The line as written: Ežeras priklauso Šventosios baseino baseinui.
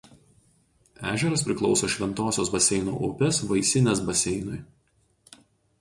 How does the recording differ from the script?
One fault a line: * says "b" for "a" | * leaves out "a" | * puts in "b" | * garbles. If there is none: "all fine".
* puts in "upės Vaisinės"